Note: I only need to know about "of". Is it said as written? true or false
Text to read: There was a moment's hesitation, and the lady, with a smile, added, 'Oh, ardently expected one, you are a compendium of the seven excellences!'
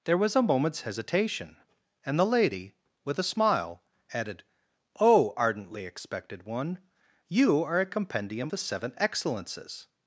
false